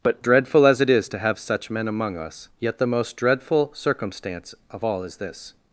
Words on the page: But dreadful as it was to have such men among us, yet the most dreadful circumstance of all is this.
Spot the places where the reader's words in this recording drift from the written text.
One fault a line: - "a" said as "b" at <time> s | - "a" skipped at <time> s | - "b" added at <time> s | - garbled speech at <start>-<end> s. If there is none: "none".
- "was" said as "is" at 0.9 s